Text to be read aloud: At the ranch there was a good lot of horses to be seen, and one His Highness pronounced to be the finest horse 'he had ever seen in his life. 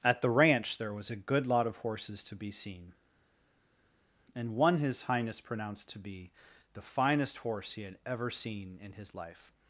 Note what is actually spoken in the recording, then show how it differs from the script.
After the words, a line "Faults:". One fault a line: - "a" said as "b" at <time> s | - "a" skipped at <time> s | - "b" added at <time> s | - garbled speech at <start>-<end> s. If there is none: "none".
At the ranch there was a good lot of horses to be seen, and one His Highness pronounced to be the finest horse 'he had ever seen in his life.
Faults:
none